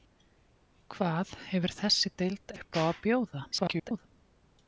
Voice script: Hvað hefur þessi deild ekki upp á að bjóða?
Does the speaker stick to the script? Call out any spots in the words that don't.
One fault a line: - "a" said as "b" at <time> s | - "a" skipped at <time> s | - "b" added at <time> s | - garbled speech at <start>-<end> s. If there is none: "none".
- "ekki" skipped at 2.5 s
- garbled speech at 3.5-4.1 s